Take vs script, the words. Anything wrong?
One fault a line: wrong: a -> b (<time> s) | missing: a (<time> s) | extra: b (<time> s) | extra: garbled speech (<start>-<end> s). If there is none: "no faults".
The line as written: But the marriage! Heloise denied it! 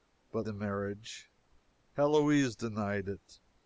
no faults